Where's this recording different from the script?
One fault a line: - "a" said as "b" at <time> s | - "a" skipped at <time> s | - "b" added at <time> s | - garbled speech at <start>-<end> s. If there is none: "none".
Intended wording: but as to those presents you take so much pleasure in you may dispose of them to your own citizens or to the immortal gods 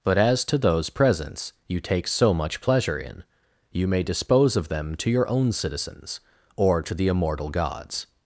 none